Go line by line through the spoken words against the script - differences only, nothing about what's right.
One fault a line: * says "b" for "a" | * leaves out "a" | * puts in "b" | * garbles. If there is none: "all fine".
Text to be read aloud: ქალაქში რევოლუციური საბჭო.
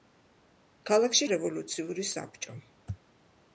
all fine